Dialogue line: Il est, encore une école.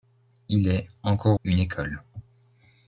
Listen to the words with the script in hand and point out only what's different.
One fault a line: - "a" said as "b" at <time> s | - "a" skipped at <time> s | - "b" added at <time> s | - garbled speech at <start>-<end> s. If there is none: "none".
none